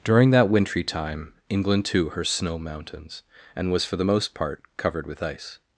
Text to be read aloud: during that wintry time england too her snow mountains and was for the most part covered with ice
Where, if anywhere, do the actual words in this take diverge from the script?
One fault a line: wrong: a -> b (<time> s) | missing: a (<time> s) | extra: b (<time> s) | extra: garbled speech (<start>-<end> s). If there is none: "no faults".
no faults